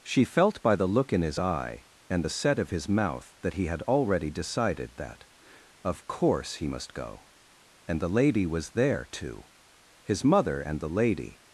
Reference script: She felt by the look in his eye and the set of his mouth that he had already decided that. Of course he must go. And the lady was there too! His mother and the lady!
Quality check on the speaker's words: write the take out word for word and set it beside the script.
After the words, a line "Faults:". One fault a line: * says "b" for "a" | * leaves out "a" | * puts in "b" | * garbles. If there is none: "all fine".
She felt by the look in his eye and the set of his mouth that he had already decided that. Of course he must go. And the lady was there too! His mother and the lady!
Faults:
all fine